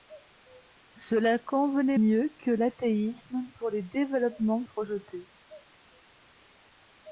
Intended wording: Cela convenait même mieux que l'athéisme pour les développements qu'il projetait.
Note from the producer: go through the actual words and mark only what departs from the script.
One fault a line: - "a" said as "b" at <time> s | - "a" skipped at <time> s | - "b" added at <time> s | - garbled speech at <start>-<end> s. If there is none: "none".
- "même" skipped at 2.0 s
- "qu'il" skipped at 4.6 s